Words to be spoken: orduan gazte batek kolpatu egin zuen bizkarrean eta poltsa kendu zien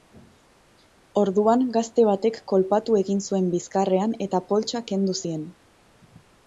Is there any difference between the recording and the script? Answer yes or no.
no